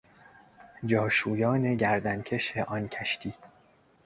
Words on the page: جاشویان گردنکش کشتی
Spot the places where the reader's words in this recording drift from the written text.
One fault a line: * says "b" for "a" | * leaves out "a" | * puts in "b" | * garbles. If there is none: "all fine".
* puts in "آن"